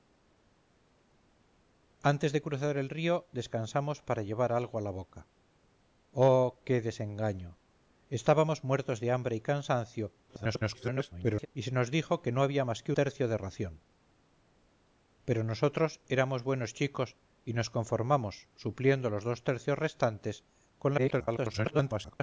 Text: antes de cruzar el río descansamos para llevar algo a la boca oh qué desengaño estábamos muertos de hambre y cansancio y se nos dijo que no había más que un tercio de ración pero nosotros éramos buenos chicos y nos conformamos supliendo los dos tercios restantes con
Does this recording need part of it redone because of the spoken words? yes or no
yes